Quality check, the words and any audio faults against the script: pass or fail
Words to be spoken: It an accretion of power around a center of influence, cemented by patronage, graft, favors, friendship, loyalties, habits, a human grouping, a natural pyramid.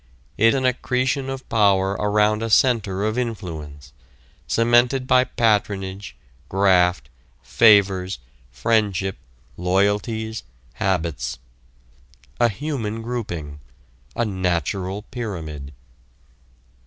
pass